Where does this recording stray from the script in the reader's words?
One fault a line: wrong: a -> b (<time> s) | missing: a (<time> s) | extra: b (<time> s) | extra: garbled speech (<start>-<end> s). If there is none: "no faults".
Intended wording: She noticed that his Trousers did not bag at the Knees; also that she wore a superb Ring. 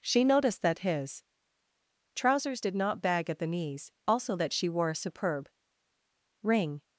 no faults